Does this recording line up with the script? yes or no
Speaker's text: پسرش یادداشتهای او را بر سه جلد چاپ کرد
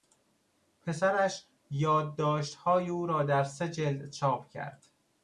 no